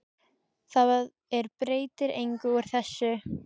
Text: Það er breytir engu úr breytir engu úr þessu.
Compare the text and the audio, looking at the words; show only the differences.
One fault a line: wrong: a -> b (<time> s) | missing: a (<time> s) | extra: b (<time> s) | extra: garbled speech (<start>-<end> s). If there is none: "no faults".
missing: breytir engu úr (2.7 s)